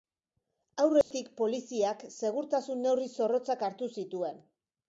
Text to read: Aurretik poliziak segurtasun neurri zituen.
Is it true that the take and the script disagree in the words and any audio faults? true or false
true